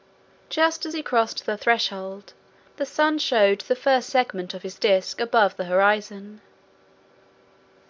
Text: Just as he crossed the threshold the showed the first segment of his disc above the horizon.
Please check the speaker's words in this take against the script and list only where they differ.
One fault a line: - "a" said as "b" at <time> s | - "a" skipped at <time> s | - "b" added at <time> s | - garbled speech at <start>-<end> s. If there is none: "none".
- "sun" added at 2.9 s